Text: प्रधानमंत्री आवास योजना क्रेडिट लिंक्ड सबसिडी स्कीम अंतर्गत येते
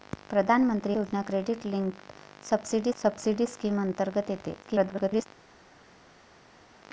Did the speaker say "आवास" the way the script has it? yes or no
no